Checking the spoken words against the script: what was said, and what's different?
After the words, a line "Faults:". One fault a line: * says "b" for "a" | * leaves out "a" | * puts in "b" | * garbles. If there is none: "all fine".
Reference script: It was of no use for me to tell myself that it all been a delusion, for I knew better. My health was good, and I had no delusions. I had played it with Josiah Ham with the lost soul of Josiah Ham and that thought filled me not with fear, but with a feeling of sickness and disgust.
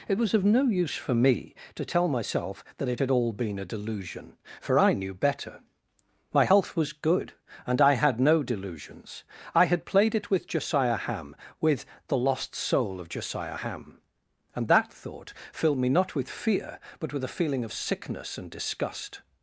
It was of no use for me to tell myself that it had all been a delusion, for I knew better. My health was good, and I had no delusions. I had played it with Josiah Ham with the lost soul of Josiah Ham and that thought filled me not with fear, but with a feeling of sickness and disgust.
Faults:
* puts in "had"